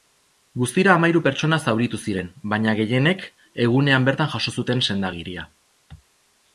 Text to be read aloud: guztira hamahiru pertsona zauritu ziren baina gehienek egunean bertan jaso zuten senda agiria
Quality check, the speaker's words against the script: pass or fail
pass